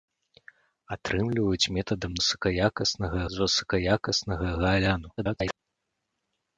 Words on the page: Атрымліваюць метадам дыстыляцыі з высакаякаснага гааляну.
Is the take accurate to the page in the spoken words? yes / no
no